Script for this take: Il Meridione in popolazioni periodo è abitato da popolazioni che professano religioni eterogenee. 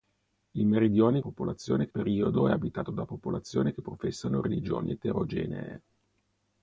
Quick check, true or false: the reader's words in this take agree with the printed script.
true